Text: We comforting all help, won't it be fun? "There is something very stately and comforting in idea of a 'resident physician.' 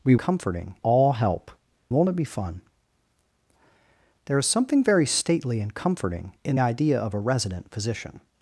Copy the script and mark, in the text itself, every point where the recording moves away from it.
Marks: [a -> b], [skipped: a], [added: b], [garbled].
We comforting all help, won't it be fun? "There is something very stately and comforting in idea of a 'resident physician.'